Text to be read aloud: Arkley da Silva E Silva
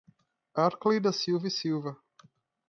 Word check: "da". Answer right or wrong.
right